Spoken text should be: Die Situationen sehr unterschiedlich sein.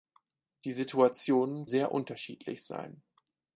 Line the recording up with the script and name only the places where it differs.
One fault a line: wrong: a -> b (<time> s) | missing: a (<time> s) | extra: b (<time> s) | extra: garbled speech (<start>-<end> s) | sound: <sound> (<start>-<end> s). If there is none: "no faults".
no faults